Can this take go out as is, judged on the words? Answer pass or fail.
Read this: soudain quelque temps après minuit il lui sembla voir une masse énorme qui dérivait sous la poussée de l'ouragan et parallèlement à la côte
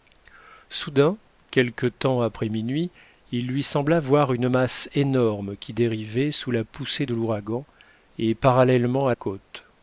fail